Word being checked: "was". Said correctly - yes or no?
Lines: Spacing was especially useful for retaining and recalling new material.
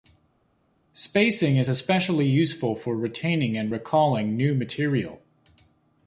no